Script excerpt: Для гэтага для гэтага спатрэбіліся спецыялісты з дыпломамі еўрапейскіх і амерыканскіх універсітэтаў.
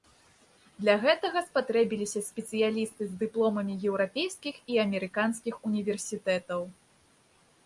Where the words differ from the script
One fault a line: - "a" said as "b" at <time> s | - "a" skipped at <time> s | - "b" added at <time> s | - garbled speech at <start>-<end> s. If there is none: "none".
- "для гэтага" skipped at 1.4 s